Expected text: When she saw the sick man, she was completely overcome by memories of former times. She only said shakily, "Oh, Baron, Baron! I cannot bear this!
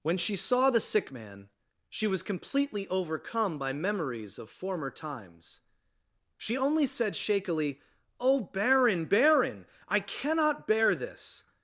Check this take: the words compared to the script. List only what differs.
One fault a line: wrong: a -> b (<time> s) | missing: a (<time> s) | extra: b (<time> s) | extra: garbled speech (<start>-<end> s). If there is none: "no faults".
no faults